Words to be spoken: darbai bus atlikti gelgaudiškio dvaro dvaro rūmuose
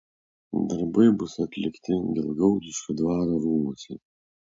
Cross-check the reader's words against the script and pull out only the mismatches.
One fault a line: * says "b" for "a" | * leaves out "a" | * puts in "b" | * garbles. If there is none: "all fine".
* leaves out "dvaro"